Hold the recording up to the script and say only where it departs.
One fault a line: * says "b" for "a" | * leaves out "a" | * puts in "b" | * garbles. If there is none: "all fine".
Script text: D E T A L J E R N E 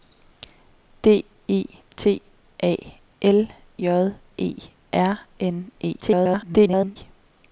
* garbles